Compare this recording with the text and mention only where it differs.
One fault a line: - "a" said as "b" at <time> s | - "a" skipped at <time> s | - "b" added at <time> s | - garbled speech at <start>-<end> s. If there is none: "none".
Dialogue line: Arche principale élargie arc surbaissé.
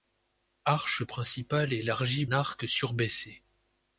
none